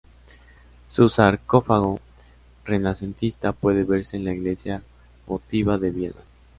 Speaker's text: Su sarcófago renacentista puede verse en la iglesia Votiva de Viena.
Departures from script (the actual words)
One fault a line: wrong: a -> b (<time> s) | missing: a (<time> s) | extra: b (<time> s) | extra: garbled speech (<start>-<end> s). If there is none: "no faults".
no faults